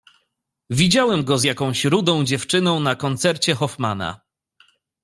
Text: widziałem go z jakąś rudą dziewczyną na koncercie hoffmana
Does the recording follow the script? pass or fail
pass